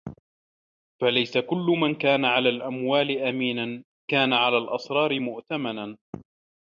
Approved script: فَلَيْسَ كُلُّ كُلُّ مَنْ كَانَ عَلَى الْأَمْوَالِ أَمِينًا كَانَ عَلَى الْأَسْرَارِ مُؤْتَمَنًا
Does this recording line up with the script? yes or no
no